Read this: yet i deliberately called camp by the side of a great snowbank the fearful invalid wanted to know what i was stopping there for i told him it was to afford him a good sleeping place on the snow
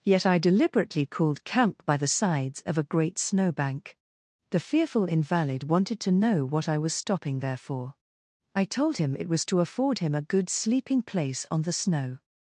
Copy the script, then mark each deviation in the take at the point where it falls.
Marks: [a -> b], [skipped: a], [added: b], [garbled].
yet i deliberately called camp by the [side -> sides] of a great snowbank the fearful invalid wanted to know what i was stopping there for i told him it was to afford him a good sleeping place on the snow